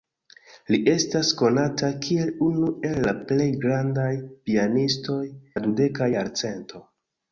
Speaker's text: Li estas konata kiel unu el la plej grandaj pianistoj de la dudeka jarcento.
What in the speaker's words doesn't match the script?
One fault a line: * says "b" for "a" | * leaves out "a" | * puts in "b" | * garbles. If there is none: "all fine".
* leaves out "de"